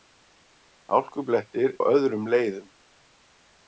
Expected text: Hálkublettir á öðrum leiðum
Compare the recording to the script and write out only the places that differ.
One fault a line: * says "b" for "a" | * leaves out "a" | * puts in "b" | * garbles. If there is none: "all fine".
all fine